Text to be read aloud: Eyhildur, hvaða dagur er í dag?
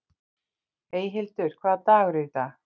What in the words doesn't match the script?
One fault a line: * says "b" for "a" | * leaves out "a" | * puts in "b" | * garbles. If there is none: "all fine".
all fine